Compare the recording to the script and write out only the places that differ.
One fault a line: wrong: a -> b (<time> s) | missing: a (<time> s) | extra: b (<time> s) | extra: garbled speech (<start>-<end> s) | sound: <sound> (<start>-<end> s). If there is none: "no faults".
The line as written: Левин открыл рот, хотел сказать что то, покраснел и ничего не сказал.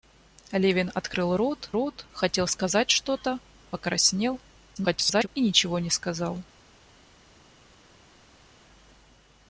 extra: рот (1.7 s)
extra: garbled speech (4.8-5.3 s)